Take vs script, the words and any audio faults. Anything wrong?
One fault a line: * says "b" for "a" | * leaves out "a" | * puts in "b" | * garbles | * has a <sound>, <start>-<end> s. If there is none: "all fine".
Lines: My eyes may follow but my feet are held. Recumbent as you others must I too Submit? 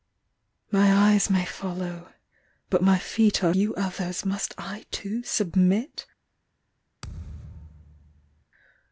* leaves out "held Recumbent as"
* has a thud, 7.0-8.5 s